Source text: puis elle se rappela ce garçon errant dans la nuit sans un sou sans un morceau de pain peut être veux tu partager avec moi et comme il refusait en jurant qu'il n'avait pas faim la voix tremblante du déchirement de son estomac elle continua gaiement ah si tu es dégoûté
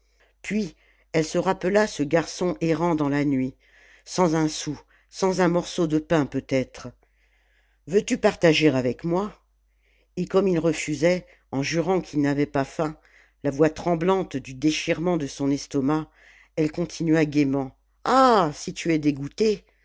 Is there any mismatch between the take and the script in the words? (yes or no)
no